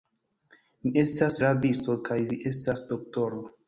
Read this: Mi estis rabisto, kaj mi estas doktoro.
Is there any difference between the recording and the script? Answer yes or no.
yes